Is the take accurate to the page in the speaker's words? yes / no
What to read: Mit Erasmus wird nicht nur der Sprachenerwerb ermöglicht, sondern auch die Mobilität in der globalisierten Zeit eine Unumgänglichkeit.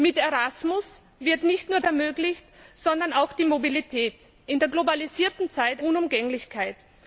no